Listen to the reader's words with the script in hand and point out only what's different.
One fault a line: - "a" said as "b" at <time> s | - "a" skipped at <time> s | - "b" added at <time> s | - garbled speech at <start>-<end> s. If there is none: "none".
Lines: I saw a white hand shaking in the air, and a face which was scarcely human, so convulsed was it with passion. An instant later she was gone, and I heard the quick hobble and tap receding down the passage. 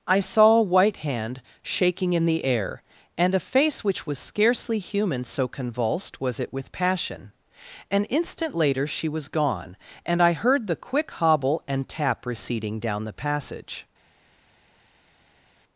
none